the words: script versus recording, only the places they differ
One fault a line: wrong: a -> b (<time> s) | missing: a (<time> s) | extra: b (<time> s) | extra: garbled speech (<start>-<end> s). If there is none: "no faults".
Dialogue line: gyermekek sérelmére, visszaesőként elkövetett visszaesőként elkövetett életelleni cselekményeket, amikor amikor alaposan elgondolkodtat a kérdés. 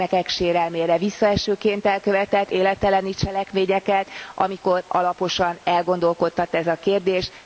missing: visszaesőként elkövetett (2.5 s)
missing: amikor (4.8 s)
extra: ez (6.5 s)